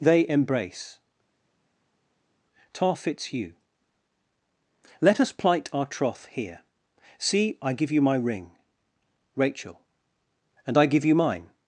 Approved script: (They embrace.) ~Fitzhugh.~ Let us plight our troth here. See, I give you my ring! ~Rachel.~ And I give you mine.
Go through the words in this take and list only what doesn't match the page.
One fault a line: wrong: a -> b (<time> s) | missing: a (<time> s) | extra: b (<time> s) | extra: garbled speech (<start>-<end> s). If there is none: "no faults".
extra: tar (2.7 s)